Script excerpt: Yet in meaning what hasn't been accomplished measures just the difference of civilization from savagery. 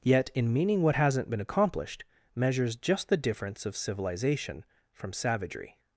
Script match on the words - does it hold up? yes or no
yes